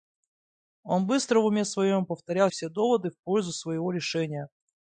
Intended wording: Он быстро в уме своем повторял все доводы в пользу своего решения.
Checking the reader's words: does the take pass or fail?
pass